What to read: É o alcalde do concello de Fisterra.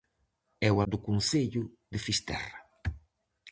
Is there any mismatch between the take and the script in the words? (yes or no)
yes